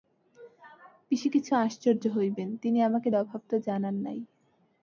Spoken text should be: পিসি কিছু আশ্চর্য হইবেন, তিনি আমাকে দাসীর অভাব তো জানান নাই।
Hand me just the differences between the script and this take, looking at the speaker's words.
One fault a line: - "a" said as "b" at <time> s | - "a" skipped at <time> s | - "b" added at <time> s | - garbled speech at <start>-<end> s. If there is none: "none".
- "দাসীর" skipped at 3.1 s